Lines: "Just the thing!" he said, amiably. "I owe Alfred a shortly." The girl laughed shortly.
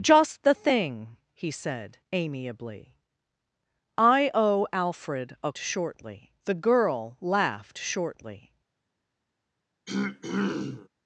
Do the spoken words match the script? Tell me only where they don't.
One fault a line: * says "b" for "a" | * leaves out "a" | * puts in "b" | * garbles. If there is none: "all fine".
all fine